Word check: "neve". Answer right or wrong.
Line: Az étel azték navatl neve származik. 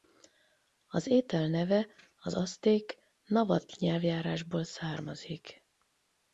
wrong